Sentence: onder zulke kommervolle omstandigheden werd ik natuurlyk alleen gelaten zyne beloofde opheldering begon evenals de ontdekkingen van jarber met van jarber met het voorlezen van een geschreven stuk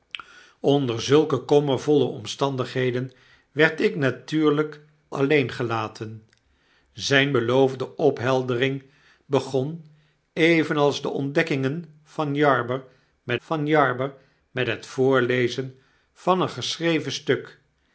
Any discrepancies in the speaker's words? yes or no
no